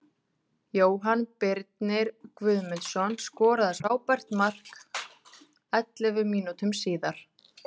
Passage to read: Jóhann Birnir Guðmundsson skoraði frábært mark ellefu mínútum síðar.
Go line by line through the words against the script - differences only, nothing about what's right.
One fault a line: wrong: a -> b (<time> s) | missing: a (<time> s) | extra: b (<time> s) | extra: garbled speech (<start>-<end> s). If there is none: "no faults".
no faults